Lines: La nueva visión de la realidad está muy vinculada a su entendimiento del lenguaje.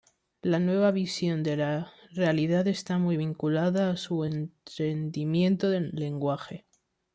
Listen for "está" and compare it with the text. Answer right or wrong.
right